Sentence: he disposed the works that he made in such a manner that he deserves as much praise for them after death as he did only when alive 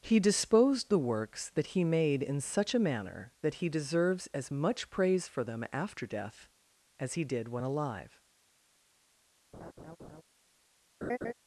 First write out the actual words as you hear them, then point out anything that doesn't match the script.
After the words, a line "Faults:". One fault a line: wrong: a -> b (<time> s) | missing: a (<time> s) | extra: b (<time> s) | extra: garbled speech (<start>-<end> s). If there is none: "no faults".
he disposed the works that he made in such a manner that he deserves as much praise for them after death as he did when alive
Faults:
missing: only (7.5 s)